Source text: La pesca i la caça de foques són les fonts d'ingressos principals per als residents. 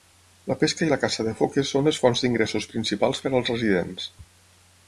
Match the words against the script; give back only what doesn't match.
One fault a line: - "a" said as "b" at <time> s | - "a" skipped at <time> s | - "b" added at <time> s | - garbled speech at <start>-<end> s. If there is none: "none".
none